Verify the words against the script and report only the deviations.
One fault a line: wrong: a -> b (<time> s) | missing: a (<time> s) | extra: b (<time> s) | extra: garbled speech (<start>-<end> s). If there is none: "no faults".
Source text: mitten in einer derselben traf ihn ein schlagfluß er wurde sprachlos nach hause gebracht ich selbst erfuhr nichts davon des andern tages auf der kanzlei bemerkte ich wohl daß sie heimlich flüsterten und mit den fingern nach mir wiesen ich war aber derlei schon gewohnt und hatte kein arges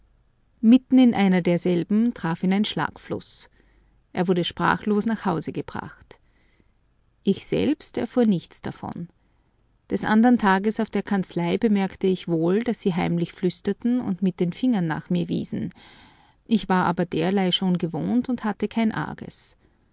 no faults